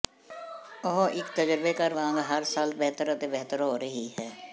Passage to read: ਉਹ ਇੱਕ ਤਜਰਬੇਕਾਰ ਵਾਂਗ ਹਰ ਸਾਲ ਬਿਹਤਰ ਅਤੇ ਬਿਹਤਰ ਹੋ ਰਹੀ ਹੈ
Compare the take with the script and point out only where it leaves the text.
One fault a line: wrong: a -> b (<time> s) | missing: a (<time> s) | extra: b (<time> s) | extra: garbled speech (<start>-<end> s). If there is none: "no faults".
no faults